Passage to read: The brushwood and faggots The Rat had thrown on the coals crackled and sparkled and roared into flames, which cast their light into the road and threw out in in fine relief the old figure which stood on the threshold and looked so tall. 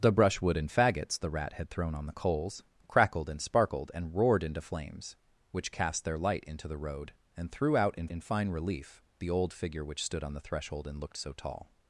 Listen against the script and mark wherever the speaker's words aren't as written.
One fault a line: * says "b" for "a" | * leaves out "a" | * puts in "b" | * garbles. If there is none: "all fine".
all fine